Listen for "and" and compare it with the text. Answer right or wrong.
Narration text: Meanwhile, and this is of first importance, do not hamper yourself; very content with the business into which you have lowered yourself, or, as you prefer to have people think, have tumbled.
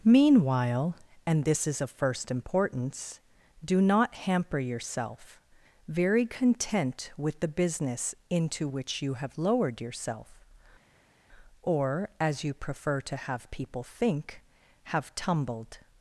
right